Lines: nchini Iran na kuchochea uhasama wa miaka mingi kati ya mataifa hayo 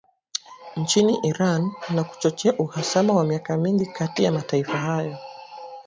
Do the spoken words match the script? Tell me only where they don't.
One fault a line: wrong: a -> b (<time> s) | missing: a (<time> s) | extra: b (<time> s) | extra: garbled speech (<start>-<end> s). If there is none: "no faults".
no faults